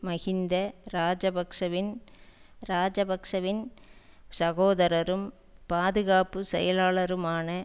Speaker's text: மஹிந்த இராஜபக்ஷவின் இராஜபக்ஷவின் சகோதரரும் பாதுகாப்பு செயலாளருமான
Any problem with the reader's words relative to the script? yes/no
no